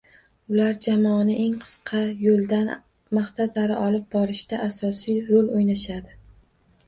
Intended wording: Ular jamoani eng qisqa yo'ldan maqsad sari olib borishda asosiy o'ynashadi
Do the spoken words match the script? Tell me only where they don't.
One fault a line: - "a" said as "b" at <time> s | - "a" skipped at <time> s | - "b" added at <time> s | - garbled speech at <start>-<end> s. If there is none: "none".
- "rol" added at 5.3 s